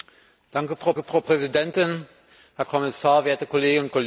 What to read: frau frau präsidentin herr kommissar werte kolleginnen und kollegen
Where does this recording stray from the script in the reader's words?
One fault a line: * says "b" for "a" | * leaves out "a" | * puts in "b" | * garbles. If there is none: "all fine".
all fine